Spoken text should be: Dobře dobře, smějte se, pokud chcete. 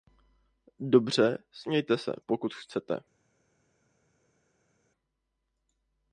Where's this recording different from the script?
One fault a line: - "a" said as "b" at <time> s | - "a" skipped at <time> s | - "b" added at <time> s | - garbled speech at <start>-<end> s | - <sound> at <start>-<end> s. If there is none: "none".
- "dobře" skipped at 1.4 s